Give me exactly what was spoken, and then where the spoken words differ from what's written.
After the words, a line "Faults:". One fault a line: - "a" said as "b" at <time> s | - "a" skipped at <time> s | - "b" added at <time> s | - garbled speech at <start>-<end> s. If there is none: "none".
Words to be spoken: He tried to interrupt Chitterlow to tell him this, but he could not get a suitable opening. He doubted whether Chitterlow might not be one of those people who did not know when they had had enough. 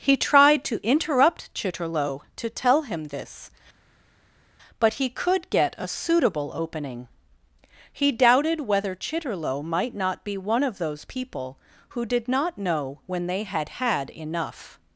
He tried to interrupt Chitterlow to tell him this, but he could get a suitable opening. He doubted whether Chitterlow might not be one of those people who did not know when they had had enough.
Faults:
- "not" skipped at 5.5 s